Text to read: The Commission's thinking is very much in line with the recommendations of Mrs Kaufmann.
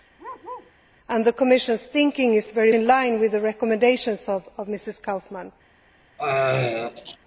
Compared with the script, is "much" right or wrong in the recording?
wrong